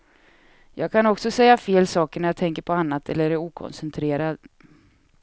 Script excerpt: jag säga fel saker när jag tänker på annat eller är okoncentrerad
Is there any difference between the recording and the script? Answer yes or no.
yes